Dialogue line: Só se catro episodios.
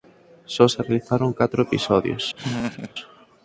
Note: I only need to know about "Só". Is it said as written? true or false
true